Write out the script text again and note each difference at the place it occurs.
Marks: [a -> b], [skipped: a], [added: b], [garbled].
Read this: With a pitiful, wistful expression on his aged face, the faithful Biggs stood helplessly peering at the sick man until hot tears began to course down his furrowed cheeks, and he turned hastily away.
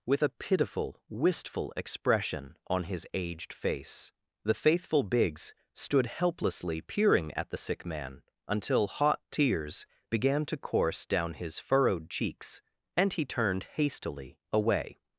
With a pitiful, wistful expression on his aged face, the faithful Biggs stood helplessly peering at the sick man until hot tears began to course down his furrowed cheeks, and he turned hastily away.